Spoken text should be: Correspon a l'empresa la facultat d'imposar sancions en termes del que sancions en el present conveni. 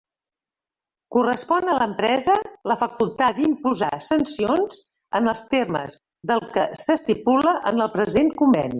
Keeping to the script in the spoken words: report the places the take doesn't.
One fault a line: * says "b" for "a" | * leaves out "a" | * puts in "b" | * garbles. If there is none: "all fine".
* puts in "els"
* says "s'estipula" for "sancions"